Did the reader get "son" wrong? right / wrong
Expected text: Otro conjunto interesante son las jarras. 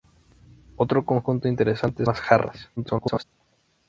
wrong